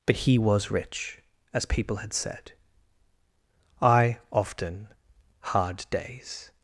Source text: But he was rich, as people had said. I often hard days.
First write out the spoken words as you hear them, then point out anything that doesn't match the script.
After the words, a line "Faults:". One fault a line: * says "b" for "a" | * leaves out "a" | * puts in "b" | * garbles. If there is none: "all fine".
But he was rich, as people had said. I often hard days.
Faults:
all fine